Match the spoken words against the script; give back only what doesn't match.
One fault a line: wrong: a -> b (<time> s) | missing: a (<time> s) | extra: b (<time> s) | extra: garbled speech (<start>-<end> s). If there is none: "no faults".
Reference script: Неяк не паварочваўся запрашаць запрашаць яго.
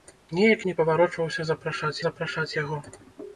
no faults